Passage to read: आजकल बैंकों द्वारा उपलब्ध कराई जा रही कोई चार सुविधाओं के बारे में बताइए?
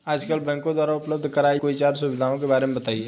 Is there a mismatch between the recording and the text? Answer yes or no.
yes